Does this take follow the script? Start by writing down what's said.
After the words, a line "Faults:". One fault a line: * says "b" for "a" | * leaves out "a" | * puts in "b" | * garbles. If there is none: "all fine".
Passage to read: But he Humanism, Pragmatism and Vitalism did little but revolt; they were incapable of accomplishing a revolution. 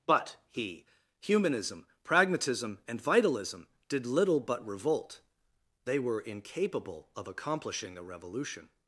But he Humanism, Pragmatism and Vitalism did little but revolt; they were incapable of accomplishing a revolution.
Faults:
all fine